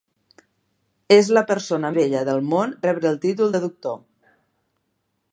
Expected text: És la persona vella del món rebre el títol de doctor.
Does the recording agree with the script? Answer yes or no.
yes